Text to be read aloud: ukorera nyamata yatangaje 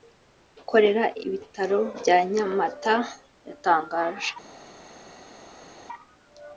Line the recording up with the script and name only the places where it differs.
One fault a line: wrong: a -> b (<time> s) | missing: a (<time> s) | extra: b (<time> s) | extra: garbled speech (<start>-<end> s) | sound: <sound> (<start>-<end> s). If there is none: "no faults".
extra: ibitaro bya (1.2 s)